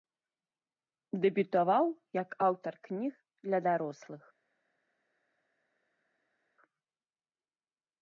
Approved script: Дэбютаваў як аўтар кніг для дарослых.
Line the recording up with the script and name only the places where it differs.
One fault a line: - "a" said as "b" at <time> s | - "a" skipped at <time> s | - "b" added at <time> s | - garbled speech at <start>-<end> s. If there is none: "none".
none